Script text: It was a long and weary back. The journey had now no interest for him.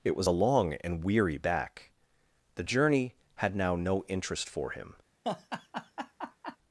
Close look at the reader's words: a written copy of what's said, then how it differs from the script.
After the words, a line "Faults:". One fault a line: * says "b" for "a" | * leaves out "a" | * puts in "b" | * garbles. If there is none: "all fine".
It was a long and weary back. The journey had now no interest for him.
Faults:
all fine